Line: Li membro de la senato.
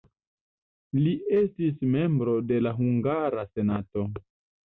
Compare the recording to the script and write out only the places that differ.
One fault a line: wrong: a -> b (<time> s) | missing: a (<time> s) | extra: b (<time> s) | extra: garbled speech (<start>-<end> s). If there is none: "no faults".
extra: estis (1.4 s)
extra: hungara (2.8 s)